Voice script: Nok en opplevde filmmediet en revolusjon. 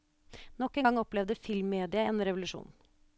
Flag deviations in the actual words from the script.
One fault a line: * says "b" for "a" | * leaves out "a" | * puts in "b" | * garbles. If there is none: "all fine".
* puts in "gang"